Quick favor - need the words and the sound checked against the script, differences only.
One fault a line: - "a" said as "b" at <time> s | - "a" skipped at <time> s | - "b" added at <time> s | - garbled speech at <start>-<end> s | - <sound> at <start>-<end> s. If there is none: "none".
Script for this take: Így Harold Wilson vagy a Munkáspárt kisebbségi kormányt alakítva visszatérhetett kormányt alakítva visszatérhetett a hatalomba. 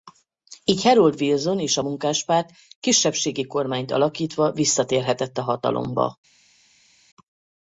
- "vagy" said as "és" at 1.6 s
- "kormányt alakítva visszatérhetett" skipped at 5.4 s